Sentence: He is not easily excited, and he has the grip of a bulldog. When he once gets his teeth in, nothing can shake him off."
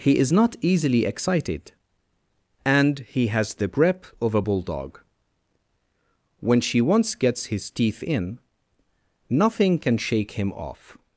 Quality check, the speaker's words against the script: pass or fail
fail